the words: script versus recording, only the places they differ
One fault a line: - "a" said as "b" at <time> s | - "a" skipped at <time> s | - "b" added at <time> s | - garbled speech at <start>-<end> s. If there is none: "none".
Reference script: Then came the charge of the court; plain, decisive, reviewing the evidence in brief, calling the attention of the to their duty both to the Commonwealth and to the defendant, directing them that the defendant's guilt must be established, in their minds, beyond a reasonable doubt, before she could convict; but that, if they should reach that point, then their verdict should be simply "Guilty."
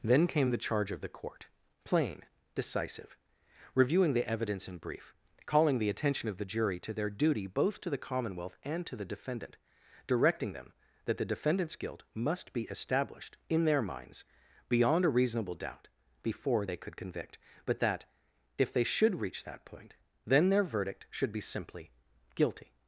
- "jury" added at 6.5 s
- "she" said as "they" at 16.6 s